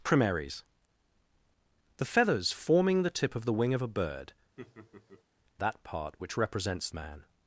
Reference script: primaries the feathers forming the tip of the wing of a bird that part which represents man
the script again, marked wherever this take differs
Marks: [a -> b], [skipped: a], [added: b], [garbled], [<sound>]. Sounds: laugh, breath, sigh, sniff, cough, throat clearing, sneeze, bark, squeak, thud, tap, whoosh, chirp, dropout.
primaries the feathers forming the tip of the wing of a bird [laugh] that part which represents man